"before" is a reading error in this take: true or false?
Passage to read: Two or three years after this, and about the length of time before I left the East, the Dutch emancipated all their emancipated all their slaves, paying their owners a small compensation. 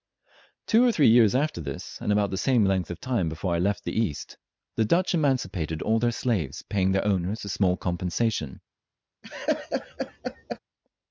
false